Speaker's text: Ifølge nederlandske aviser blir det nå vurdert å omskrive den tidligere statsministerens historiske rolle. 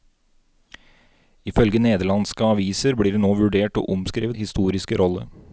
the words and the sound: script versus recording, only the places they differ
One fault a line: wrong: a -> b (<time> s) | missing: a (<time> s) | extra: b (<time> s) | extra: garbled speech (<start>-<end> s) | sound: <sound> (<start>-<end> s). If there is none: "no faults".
missing: den tidligere statsministerens (4.3 s)